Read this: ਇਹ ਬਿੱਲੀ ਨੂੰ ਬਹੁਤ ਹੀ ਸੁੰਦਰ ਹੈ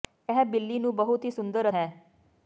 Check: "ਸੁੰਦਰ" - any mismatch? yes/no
no